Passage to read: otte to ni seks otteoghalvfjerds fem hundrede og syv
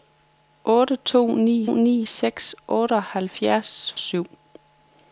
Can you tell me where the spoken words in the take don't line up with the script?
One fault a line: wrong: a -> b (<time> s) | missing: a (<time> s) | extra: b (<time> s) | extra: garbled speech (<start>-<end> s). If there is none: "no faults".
extra: ni (1.7 s)
missing: fem hundrede og (3.9 s)